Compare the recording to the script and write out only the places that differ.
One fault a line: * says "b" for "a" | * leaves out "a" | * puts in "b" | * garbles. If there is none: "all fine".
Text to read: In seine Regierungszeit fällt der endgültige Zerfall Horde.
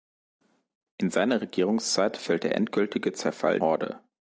all fine